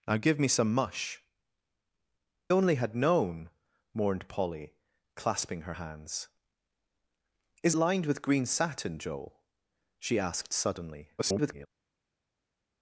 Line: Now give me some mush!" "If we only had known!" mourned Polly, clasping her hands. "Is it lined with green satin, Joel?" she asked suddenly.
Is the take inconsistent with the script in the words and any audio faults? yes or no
yes